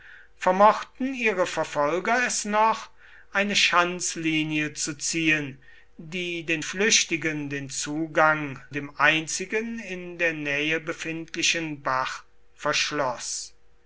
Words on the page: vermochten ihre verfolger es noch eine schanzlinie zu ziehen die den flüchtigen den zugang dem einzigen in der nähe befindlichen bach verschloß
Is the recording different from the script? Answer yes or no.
no